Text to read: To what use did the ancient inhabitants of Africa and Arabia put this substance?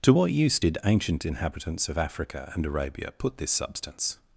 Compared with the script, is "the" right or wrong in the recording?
wrong